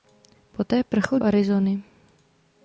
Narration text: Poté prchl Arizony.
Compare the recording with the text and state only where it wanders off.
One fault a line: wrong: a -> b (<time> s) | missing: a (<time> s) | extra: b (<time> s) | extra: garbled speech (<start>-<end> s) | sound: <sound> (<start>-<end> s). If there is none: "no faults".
no faults